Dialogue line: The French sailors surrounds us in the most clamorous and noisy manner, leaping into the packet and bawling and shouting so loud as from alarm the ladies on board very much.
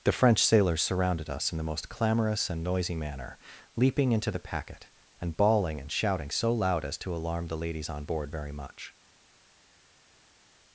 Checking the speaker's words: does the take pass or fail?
fail